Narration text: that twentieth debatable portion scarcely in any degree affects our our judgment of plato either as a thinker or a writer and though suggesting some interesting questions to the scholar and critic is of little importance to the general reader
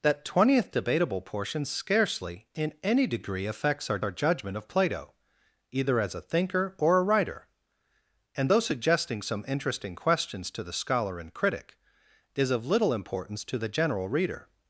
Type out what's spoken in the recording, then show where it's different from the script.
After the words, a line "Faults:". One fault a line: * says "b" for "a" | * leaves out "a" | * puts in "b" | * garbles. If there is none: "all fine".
that twentieth debatable portion scarcely in any degree affects our our judgment of plato either as a thinker or a writer and though suggesting some interesting questions to the scholar and critic is of little importance to the general reader
Faults:
all fine